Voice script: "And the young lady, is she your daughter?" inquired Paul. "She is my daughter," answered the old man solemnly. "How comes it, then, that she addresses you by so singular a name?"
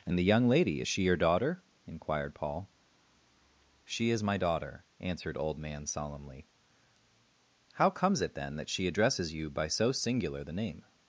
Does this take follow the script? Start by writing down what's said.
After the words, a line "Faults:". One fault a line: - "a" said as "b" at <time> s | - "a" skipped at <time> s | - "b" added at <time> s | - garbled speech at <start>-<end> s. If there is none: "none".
"And the young lady, is she your daughter?" inquired Paul. "She is my daughter," answered old man solemnly. "How comes it, then, that she addresses you by so singular the name?"
Faults:
- "the" skipped at 5.4 s
- "a" said as "the" at 10.4 s